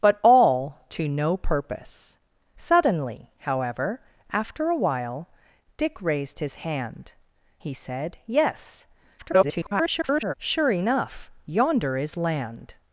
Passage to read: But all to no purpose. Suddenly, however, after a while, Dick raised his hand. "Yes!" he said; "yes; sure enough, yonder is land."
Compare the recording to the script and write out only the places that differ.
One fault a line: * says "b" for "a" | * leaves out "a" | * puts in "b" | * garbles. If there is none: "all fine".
* leaves out "Yes"
* garbles